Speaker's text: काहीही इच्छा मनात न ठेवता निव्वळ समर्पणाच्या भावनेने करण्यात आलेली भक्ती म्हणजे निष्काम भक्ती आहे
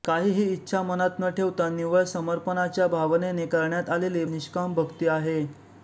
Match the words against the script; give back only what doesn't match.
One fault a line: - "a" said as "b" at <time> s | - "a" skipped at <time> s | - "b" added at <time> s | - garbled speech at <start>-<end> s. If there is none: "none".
- "भक्ती म्हणजे" skipped at 4.2 s